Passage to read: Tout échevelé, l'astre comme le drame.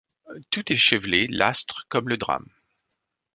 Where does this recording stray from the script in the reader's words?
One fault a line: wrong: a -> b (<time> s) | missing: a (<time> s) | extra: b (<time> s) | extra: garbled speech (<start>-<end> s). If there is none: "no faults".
no faults